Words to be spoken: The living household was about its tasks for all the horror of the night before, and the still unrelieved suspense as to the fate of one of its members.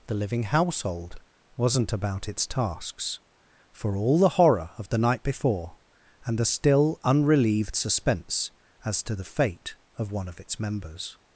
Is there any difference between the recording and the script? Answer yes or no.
yes